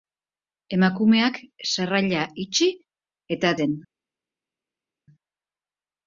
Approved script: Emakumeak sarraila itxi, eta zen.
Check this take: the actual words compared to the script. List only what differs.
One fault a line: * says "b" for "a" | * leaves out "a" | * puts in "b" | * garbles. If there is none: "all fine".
all fine